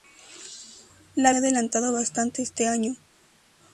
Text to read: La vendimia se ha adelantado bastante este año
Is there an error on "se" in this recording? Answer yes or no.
yes